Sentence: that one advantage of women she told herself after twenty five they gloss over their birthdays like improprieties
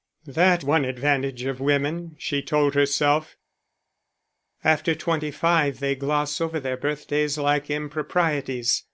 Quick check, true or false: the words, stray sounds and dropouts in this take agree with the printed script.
true